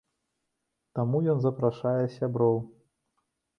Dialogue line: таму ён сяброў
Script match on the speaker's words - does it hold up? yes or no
no